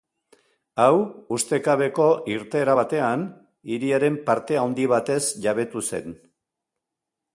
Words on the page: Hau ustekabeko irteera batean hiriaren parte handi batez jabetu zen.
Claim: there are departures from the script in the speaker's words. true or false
false